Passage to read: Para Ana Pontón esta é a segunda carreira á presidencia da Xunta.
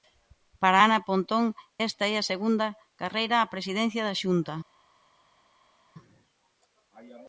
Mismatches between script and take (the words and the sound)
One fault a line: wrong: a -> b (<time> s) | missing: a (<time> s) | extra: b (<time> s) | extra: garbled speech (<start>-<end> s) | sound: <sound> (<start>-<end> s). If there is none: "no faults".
no faults